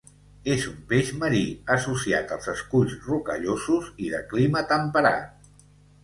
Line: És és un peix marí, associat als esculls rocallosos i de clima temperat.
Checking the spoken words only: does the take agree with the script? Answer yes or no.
no